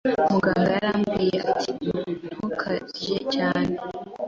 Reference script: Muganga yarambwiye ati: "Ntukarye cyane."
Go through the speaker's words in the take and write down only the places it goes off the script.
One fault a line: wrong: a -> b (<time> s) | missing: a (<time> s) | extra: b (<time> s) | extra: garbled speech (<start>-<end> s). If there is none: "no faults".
no faults